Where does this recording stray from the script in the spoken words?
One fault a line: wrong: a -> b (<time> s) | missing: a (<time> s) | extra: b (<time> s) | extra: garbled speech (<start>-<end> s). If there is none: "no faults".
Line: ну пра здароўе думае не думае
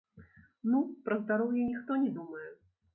wrong: думае -> ніхто (1.7 s)